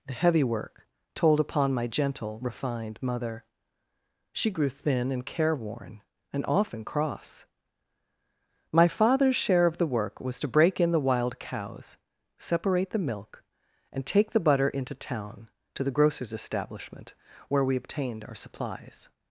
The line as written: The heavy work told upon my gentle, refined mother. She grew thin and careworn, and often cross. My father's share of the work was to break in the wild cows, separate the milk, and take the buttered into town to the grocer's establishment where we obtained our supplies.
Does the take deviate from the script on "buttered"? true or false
true